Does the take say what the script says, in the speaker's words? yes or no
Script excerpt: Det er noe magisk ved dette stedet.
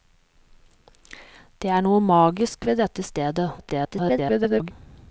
no